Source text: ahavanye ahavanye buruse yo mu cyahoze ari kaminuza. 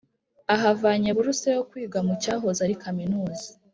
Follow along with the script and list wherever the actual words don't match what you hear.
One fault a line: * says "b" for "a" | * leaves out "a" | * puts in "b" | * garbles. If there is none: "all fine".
* leaves out "ahavanye"
* puts in "kwiga"